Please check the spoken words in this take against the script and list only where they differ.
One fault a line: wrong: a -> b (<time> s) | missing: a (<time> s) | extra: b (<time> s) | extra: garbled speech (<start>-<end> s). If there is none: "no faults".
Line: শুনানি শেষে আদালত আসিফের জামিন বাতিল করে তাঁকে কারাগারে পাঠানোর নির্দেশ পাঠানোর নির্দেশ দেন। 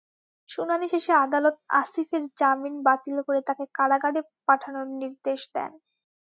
missing: পাঠানোর নির্দেশ (5.4 s)